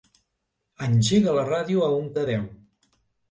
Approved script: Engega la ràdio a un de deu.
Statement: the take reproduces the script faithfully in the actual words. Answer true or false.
true